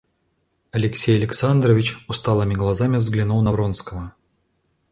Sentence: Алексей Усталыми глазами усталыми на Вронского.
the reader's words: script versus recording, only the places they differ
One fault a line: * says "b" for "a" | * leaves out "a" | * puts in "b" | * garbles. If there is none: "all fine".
* puts in "Александрович"
* says "взглянул" for "усталыми"